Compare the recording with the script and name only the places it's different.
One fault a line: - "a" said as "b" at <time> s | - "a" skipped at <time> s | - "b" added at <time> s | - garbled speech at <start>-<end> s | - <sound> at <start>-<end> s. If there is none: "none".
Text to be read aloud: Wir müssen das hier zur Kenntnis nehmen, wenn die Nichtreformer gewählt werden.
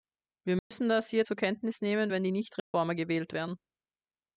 - dropout at 0.6-0.7 s
- dropout at 2.6-2.7 s